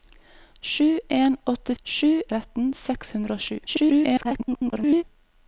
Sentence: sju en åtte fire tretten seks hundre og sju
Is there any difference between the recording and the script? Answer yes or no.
yes